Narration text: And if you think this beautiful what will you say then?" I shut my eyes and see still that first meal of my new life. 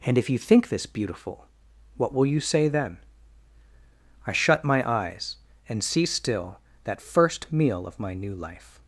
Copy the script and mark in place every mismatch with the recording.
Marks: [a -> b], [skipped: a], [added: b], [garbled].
And if you think this beautiful what will you say then?" I shut my eyes and see still that first meal of my new life.